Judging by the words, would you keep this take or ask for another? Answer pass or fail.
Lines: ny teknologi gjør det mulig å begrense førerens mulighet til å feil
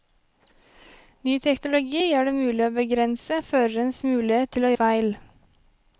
pass